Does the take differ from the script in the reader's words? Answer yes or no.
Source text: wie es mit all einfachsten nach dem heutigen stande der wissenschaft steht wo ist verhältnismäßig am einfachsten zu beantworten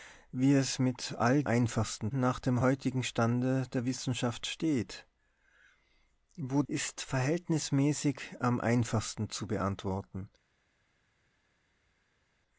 no